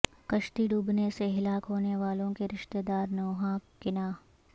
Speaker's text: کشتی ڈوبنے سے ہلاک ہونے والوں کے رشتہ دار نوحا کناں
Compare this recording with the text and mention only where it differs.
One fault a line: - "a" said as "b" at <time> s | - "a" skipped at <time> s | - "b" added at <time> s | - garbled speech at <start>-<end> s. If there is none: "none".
none